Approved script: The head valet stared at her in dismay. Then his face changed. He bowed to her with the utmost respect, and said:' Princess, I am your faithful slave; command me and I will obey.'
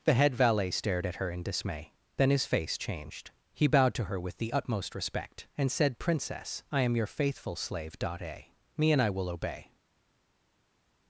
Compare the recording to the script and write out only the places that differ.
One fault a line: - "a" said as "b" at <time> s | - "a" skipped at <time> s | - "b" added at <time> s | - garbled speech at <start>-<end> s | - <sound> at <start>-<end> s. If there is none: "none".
- "command" said as "dot a" at 8.0 s